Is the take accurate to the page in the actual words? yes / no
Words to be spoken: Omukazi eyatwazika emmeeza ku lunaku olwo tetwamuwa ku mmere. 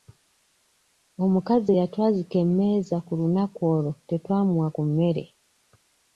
yes